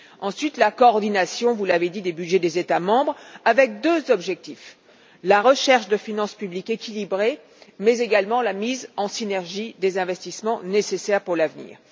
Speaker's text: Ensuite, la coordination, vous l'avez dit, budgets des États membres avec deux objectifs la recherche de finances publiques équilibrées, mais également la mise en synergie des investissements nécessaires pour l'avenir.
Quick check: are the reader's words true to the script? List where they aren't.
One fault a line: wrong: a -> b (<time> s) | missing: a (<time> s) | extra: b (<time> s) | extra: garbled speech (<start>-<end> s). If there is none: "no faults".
extra: des (2.0 s)